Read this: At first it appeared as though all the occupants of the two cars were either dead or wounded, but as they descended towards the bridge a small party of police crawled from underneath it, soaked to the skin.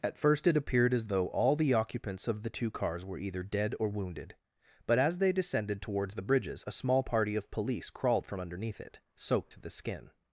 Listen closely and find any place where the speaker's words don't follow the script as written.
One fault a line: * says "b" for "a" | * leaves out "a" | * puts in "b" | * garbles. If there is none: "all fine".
* says "bridges" for "bridge"